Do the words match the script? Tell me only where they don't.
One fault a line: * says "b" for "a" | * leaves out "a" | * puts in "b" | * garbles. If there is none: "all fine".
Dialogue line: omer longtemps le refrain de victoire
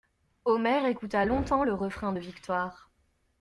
* puts in "écouta"